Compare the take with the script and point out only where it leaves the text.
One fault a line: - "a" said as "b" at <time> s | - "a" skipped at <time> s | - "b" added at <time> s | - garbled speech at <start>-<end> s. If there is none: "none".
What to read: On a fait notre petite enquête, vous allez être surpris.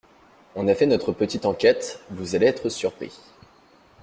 none